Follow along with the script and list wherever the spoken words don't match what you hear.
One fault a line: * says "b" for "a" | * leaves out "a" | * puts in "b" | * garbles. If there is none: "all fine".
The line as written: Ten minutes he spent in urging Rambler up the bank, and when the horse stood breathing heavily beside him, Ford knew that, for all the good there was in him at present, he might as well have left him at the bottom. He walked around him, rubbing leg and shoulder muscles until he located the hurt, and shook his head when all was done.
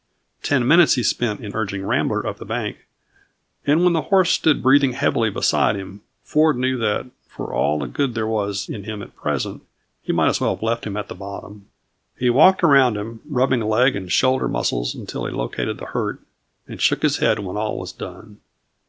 all fine